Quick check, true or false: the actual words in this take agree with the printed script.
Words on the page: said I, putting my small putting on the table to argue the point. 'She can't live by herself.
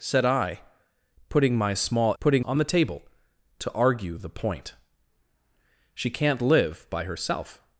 true